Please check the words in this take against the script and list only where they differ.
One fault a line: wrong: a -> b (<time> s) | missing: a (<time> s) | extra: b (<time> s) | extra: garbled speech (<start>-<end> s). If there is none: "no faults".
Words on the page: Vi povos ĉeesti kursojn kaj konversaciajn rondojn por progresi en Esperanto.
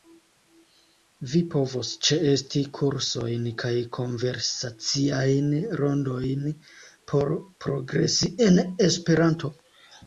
no faults